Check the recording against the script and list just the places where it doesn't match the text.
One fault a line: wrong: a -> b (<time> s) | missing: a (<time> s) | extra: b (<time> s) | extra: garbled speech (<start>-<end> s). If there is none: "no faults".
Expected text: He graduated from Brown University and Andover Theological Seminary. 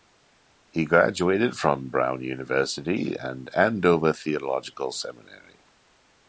no faults